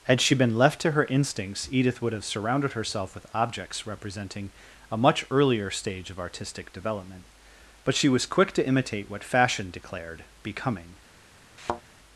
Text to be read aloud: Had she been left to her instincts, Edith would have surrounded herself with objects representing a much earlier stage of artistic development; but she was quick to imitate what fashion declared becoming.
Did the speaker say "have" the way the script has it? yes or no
yes